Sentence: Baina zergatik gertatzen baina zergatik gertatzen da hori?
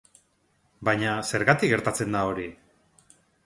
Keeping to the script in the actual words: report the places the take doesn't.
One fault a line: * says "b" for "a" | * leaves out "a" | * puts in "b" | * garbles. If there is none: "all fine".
* leaves out "baina zergatik gertatzen"